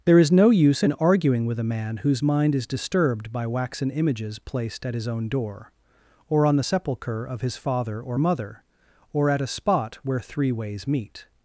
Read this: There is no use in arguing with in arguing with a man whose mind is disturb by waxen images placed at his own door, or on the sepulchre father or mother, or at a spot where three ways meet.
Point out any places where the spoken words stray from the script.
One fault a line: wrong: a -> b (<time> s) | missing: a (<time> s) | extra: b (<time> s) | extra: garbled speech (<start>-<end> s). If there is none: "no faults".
missing: in arguing with (1.6 s)
wrong: disturb -> disturbed (2.7 s)
extra: of his (7.3 s)